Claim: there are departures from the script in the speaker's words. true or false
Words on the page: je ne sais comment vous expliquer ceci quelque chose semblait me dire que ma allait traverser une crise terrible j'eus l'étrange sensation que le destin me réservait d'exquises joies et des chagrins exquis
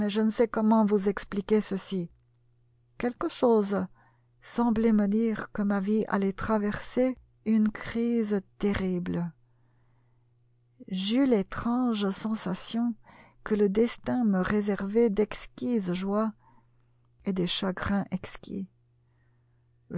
true